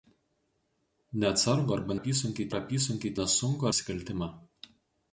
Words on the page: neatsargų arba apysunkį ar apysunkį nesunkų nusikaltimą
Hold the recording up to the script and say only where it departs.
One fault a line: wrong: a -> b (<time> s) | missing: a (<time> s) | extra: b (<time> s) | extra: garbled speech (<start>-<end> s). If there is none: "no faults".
no faults